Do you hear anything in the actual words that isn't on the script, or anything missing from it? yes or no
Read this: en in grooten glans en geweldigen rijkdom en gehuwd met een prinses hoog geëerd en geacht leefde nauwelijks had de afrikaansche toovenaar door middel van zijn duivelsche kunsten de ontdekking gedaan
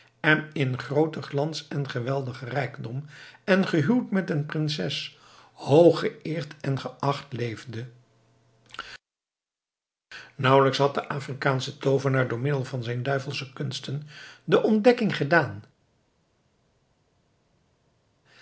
no